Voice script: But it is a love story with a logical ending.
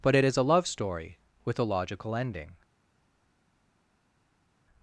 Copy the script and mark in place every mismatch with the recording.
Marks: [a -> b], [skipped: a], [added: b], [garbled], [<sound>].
But it is a love story with a logical ending.